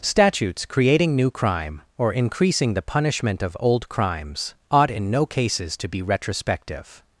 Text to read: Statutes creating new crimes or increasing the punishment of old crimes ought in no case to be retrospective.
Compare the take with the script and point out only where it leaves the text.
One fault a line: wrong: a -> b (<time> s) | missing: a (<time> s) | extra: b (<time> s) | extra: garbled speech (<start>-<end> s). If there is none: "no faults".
wrong: crimes -> crime (1.3 s)
wrong: case -> cases (5.3 s)